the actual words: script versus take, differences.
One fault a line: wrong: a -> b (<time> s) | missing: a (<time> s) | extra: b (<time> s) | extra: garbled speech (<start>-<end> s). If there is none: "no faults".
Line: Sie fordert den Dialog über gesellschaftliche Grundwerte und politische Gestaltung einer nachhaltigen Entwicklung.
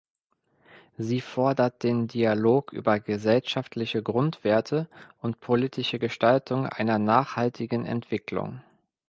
no faults